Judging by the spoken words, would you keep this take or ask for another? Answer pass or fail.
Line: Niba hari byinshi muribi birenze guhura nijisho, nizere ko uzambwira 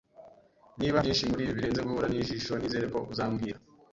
fail